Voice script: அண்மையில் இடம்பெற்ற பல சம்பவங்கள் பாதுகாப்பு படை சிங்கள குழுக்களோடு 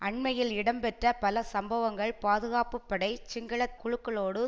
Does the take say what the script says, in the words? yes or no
yes